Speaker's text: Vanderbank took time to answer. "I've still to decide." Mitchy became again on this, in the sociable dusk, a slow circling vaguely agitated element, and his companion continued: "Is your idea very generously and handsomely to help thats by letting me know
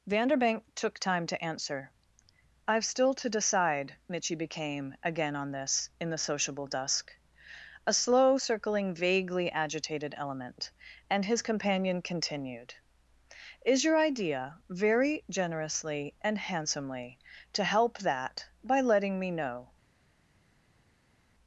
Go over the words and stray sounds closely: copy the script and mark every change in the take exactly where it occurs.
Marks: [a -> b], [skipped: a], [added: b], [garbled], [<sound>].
Vanderbank took time to answer. "I've still to decide." Mitchy became again on this, in the sociable dusk, a slow circling vaguely agitated element, and his companion continued: "Is your idea very generously and handsomely to help [thats -> that] by letting me know